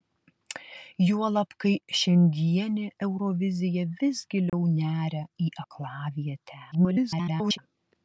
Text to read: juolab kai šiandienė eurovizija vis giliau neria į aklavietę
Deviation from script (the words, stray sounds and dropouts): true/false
true